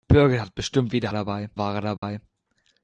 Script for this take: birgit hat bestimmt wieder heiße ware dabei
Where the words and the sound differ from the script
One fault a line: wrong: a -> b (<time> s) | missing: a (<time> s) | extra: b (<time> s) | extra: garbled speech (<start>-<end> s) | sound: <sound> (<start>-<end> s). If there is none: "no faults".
wrong: heiße -> dabei (1.1 s)
sound: dropout (2.0-2.0 s)